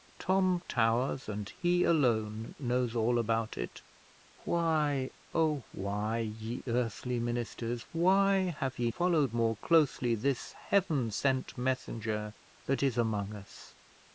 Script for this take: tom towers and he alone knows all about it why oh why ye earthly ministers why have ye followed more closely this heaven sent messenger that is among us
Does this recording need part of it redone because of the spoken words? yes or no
no